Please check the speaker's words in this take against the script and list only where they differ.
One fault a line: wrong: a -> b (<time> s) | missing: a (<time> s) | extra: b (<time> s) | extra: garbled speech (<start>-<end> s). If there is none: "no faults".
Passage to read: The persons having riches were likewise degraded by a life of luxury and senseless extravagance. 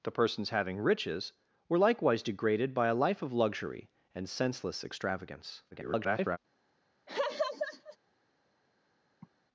extra: garbled speech (5.7-6.4 s)